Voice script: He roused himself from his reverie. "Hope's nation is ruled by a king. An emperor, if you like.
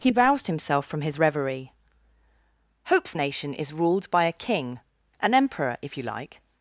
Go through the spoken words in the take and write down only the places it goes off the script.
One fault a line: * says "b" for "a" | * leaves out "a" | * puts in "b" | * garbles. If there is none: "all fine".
all fine